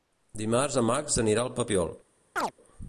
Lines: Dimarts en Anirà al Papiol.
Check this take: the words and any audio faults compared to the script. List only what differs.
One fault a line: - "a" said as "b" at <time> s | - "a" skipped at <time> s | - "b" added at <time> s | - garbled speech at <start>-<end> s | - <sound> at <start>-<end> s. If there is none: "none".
- "Max" added at 0.9 s
- chirp at 2.4-2.5 s